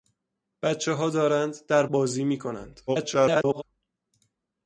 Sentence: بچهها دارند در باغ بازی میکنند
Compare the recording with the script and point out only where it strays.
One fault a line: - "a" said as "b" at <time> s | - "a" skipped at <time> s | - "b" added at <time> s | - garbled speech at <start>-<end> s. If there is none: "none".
- "باغ" skipped at 1.9 s
- garbled speech at 2.9-3.6 s